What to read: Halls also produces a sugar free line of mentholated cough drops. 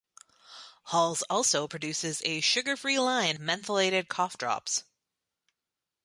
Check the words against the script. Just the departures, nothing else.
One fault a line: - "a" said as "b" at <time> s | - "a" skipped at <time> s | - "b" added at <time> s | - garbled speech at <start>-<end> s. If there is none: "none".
- "of" skipped at 3.4 s